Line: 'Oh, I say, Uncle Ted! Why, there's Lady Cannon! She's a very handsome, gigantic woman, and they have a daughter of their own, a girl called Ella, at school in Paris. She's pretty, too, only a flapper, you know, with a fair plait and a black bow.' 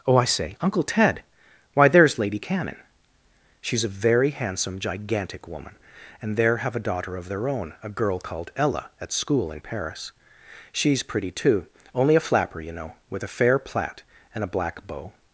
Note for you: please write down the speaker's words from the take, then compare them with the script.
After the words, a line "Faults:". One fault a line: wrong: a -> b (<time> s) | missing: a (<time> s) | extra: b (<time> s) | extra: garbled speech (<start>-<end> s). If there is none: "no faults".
'Oh, I say, Uncle Ted! Why, there's Lady Cannon! She's a very handsome, gigantic woman, and there have a daughter of their own, a girl called Ella, at school in Paris. She's pretty, too, only a flapper, you know, with a fair plait and a black bow.'
Faults:
wrong: they -> there (6.4 s)